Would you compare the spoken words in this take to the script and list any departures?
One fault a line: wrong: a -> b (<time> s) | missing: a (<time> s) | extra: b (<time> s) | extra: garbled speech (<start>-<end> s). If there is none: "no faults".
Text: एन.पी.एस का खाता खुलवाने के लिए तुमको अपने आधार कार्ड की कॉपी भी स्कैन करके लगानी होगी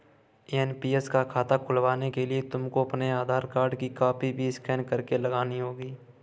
no faults